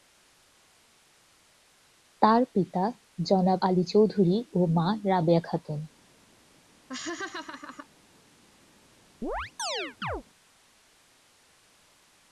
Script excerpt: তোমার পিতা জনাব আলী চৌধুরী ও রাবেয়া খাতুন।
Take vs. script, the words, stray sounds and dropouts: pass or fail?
fail